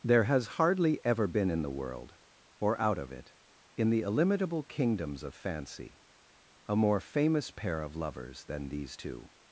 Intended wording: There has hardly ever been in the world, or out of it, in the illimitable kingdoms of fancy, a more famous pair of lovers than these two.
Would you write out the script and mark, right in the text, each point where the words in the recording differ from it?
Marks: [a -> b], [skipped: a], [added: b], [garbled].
There has hardly ever been in the world, or out of it, in the illimitable kingdoms of fancy, a more famous pair of lovers than these two.